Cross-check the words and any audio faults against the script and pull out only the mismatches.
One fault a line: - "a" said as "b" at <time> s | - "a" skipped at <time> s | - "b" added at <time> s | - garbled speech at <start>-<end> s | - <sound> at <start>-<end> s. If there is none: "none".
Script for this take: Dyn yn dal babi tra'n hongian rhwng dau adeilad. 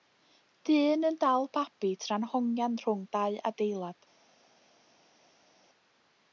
none